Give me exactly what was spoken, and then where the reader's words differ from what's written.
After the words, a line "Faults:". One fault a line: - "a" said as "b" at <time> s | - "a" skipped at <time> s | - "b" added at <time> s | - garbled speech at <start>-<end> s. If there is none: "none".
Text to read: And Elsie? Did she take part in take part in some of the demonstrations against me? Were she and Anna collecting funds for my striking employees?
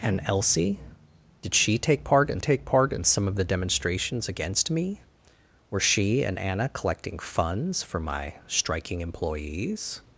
And Elsie? Did she take part in take part in some of the demonstrations against me? Were she and Anna collecting funds for my striking employees?
Faults:
none